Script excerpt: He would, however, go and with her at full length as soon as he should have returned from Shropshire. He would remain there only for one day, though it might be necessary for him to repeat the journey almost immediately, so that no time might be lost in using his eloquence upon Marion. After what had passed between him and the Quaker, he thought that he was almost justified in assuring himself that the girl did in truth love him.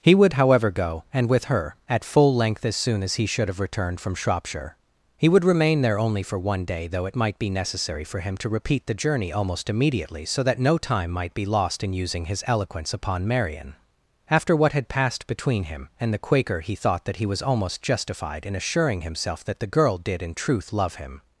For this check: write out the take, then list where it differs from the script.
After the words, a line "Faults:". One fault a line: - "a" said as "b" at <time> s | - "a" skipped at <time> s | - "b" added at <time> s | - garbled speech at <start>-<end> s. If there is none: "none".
He would, however, go and with her at full length as soon as he should have returned from Shropshire. He would remain there only for one day, though it might be necessary for him to repeat the journey almost immediately, so that no time might be lost in using his eloquence upon Marion. After what had passed between him and the Quaker, he thought that he was almost justified in assuring himself that the girl did in truth love him.
Faults:
none